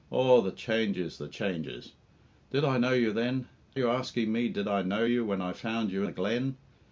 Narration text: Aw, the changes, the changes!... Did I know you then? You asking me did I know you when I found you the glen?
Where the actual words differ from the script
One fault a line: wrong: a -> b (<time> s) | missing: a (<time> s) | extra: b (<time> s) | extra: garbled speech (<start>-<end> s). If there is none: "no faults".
no faults